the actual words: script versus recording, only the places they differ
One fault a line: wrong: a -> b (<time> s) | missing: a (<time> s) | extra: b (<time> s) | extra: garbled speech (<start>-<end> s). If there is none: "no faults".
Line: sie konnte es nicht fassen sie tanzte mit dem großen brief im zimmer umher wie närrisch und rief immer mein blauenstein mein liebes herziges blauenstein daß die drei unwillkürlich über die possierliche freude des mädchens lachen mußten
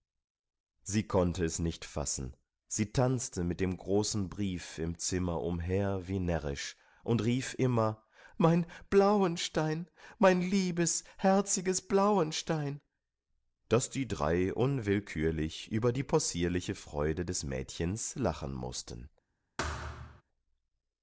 no faults